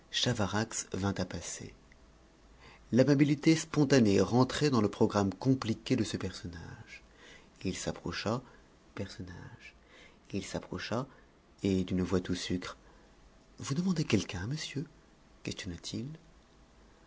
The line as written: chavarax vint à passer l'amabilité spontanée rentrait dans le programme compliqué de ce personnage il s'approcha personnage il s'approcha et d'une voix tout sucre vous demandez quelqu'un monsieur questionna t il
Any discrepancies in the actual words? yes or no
no